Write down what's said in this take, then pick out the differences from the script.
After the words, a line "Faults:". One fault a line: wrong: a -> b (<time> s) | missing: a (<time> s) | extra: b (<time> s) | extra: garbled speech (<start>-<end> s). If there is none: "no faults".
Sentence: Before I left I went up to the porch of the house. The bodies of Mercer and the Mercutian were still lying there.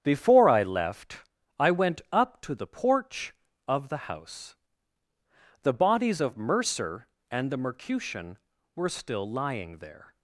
Before I left I went up to the porch of the house. The bodies of Mercer and the Mercutian were still lying there.
Faults:
no faults